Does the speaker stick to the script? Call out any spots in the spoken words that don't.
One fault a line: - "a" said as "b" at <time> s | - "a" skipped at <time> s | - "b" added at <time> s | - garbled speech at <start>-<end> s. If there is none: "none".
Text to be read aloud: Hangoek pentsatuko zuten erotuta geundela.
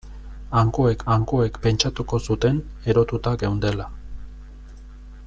- "hangoek" added at 1.1 s